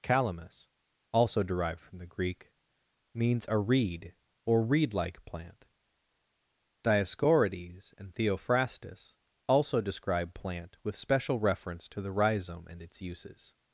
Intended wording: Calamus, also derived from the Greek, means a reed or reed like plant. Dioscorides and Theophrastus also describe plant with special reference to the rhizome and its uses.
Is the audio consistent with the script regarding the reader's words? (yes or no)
yes